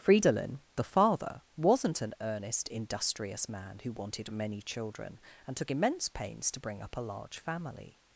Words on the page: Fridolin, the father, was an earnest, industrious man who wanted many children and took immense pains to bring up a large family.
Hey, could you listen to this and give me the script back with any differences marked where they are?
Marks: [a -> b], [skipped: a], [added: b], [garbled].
Fridolin, the father, [was -> wasn't] an earnest, industrious man who wanted many children and took immense pains to bring up a large family.